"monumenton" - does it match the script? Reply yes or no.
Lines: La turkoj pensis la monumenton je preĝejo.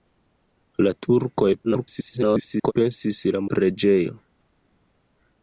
no